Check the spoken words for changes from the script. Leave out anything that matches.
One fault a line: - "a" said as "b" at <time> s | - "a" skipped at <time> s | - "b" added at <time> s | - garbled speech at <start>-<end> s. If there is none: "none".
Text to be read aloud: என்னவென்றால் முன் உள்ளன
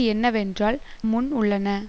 none